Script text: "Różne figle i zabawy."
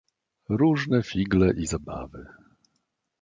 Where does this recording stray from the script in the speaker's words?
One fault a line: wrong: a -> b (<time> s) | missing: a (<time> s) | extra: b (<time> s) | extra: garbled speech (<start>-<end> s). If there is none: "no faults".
no faults